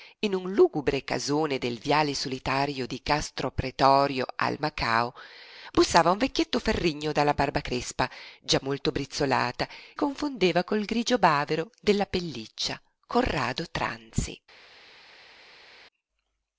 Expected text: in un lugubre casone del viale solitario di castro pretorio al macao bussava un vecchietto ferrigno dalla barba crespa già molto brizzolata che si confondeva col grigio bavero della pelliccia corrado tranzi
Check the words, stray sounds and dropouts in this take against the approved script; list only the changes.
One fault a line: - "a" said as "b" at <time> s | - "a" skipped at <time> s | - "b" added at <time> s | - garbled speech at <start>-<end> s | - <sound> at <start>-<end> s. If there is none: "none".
- "che si" skipped at 9.7 s